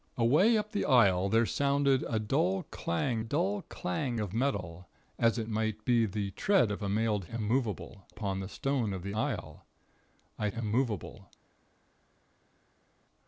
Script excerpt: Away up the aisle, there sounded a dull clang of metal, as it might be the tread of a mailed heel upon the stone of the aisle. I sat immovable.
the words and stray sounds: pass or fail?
fail